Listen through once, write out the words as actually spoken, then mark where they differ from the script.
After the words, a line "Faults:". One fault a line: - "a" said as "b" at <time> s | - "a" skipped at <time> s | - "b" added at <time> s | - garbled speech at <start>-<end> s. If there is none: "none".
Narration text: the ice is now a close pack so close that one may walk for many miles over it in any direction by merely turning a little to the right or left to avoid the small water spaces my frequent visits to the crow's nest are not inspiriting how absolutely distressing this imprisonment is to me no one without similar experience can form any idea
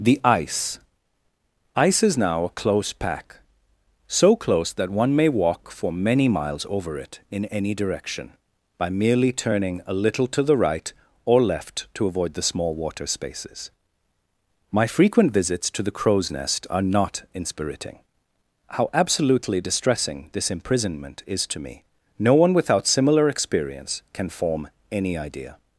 the ice ice is now a close pack so close that one may walk for many miles over it in any direction by merely turning a little to the right or left to avoid the small water spaces my frequent visits to the crow's nest are not inspiriting how absolutely distressing this imprisonment is to me no one without similar experience can form any idea
Faults:
- "ice" added at 1.8 s